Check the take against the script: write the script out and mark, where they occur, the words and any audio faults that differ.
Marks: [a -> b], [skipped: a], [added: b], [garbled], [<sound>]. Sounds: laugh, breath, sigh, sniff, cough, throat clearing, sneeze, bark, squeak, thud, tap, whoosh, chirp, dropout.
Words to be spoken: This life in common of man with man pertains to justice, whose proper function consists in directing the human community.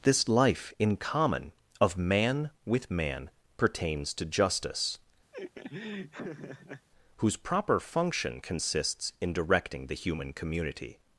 This life in common of man with man pertains to justice, [laugh] whose proper function consists in directing the human community.